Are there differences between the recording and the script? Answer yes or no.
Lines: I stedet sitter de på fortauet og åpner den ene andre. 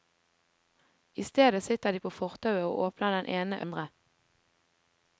no